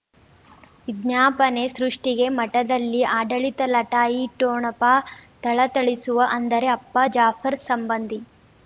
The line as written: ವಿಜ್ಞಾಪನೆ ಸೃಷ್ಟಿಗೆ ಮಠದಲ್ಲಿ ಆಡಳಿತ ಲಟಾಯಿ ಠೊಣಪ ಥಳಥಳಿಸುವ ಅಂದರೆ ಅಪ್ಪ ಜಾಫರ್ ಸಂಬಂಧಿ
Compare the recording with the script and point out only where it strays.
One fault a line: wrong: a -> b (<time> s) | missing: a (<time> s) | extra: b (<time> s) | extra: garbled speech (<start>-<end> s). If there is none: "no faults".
no faults